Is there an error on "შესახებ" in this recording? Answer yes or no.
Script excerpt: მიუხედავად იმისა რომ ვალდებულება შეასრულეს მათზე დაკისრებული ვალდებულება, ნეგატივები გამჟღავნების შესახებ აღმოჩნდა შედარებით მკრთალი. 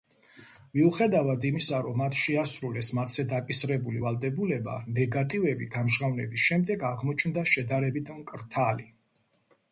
yes